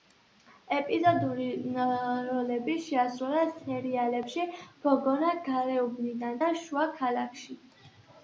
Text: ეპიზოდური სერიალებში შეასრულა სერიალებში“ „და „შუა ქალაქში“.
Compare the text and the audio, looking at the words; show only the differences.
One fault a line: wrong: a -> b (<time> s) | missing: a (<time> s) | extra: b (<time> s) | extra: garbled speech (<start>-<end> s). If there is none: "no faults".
wrong: სერიალებში -> როლები (2.3 s)
extra: გოგონა გარეუბნიდან (4.9 s)